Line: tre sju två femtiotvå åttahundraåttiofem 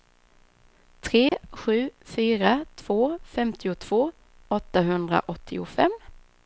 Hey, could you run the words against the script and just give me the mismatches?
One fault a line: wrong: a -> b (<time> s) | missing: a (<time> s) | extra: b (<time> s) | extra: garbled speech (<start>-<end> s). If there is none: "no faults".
extra: fyra (2.0 s)